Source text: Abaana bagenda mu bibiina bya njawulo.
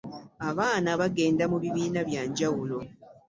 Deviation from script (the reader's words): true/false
false